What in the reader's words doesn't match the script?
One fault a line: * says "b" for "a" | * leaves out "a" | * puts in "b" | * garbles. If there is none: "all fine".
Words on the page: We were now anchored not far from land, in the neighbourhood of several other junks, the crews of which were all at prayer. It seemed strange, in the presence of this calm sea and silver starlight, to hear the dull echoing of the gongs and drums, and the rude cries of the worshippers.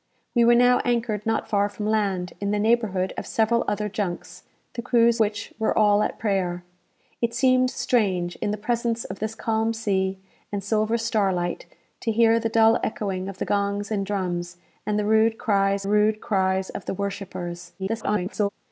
* leaves out "of"
* puts in "rude cries"
* garbles